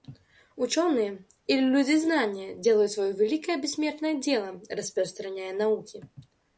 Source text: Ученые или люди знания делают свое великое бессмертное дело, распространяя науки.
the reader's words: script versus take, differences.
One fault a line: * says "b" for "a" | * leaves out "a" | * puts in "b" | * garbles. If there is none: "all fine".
all fine